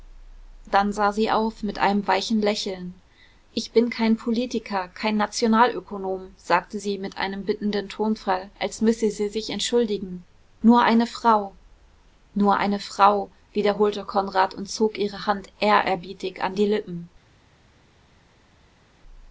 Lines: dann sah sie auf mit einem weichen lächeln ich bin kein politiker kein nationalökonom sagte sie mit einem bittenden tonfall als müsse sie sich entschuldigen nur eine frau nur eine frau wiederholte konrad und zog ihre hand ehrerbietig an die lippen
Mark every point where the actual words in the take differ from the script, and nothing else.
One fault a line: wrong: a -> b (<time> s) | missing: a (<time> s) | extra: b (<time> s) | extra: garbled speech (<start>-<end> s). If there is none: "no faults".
no faults